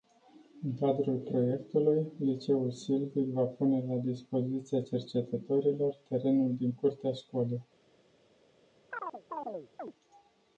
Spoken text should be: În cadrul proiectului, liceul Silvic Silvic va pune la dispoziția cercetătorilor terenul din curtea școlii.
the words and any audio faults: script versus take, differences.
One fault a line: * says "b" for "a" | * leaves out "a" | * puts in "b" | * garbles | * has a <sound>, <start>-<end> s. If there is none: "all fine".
* leaves out "Silvic"
* has a chirp, 8.9-9.9 s